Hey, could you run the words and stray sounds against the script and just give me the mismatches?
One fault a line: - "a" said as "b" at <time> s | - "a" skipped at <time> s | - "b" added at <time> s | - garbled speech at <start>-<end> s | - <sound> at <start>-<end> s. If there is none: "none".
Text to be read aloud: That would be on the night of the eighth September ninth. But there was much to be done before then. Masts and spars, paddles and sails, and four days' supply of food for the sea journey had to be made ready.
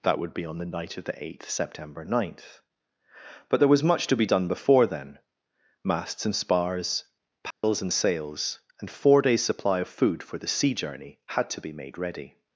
- dropout at 7.5-7.6 s